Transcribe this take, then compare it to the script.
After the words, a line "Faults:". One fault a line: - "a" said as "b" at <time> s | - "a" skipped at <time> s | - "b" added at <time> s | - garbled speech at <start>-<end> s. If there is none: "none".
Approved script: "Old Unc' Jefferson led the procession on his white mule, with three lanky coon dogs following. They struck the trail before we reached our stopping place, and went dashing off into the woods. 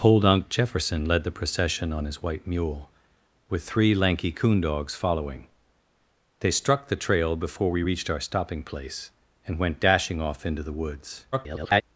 "Old Unc' Jefferson led the procession on his white mule, with three lanky coon dogs following. They struck the trail before we reached our stopping place, and went dashing off into the woods. [garbled]
Faults:
- garbled speech at 11.3-11.8 s